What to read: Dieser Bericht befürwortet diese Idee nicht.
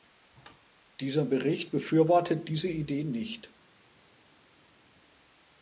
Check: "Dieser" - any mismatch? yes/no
no